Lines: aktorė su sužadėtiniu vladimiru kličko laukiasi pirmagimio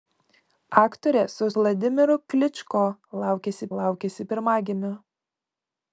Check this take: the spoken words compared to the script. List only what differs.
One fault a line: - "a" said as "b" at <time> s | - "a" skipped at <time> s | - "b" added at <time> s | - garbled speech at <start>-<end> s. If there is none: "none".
- "sužadėtiniu" skipped at 1.5 s
- "laukiasi" added at 3.8 s